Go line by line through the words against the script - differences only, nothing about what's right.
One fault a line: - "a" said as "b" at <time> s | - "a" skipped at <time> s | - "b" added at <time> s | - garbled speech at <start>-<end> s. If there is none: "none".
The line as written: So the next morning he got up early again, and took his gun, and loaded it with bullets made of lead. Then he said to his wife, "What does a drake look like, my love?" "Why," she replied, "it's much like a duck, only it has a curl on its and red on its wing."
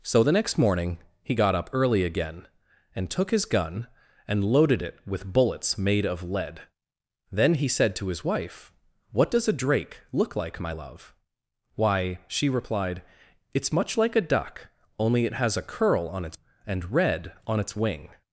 none